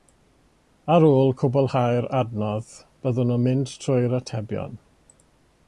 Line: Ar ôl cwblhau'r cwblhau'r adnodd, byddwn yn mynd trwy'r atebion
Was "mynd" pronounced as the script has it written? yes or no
yes